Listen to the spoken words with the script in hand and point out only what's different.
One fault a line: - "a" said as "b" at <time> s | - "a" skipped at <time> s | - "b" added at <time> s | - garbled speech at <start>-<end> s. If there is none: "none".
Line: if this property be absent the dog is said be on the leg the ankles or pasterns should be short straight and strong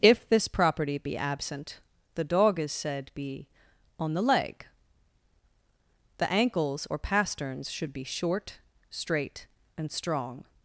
none